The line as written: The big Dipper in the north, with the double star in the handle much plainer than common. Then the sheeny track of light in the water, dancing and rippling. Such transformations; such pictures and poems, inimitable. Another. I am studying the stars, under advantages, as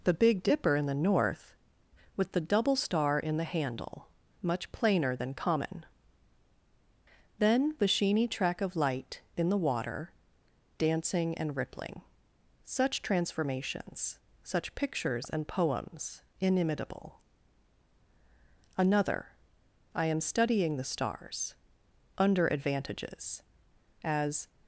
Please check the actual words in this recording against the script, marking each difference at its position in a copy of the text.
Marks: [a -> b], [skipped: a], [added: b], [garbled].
The big Dipper in the north, with the double star in the handle much plainer than common. Then the sheeny track of light in the water, dancing and rippling. Such transformations; such pictures and poems, inimitable. Another. I am studying the stars, under advantages, as